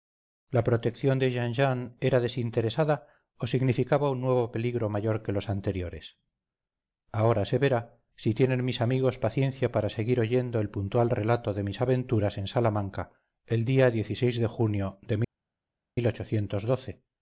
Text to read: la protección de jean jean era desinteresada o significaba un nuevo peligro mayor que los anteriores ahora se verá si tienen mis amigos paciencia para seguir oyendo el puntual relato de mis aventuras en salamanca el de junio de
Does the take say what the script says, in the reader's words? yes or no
no